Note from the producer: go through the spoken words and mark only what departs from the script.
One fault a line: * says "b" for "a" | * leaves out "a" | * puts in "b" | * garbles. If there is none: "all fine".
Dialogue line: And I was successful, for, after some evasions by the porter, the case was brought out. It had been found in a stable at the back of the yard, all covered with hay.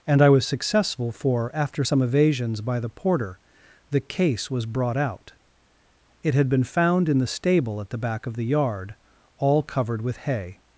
* says "the" for "a"